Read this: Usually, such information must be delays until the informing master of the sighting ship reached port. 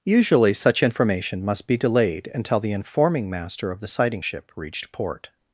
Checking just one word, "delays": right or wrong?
wrong